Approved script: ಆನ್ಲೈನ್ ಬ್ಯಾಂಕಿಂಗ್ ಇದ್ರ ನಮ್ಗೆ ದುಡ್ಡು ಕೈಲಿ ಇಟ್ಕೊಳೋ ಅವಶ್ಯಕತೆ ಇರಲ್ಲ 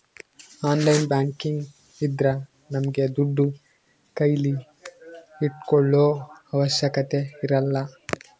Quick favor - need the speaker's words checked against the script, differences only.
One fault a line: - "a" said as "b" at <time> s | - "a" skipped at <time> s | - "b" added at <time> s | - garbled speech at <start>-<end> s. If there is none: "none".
none